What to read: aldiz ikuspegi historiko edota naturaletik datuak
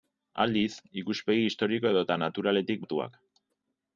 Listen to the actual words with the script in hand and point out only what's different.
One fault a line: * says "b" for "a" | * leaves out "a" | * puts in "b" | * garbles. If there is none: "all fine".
all fine